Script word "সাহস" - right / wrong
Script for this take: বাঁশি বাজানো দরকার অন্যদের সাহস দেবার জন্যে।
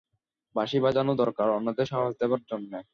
right